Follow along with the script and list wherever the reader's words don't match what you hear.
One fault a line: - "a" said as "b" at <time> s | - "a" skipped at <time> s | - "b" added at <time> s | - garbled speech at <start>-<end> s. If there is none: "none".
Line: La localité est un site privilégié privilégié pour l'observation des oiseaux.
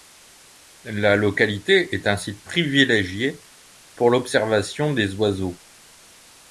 - "privilégié" skipped at 3.4 s